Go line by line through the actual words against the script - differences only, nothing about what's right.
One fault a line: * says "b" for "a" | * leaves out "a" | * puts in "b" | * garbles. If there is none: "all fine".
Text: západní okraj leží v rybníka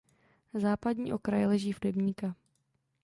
all fine